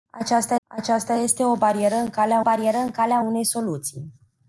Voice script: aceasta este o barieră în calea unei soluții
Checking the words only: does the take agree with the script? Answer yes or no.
no